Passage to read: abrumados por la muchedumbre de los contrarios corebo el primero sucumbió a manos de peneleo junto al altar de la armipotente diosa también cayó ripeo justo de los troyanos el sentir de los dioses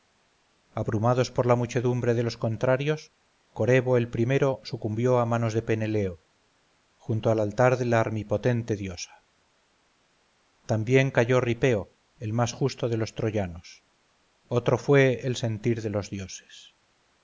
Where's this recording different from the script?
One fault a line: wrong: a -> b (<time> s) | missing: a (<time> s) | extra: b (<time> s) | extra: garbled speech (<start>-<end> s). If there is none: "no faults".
extra: el más (12.2 s)
extra: otro fue (14.5 s)